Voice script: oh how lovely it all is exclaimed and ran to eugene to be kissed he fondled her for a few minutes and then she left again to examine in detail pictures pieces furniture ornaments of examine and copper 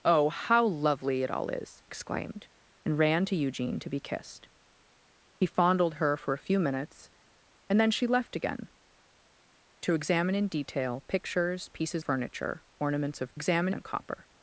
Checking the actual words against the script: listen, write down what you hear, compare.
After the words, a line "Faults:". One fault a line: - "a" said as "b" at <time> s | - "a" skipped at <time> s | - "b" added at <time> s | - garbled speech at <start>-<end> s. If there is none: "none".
oh how lovely it all is exclaimed and ran to eugene to be kissed he fondled her for a few minutes and then she left again to examine in detail pictures pieces furniture ornaments of examine and copper
Faults:
none